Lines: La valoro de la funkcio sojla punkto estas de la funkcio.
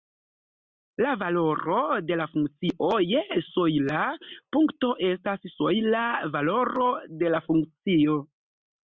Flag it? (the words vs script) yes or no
yes